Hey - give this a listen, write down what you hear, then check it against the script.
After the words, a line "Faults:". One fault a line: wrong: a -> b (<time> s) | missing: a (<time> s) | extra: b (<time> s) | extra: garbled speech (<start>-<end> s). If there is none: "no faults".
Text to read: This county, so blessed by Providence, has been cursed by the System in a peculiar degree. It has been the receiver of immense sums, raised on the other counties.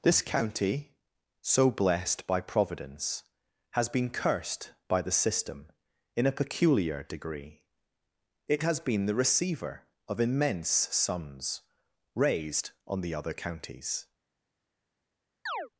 This county, so blessed by Providence, has been cursed by the System in a peculiar degree. It has been the receiver of immense sums, raised on the other counties.
Faults:
no faults